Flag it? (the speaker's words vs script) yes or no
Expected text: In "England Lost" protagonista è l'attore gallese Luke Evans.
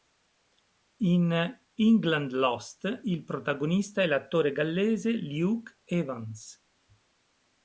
yes